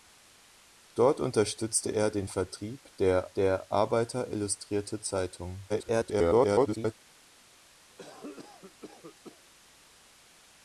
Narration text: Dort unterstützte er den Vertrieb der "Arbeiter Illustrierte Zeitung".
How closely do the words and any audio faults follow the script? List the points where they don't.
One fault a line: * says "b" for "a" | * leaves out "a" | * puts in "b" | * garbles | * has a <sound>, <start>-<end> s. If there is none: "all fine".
* puts in "der"
* garbles
* has a cough, 7.9-9.4 s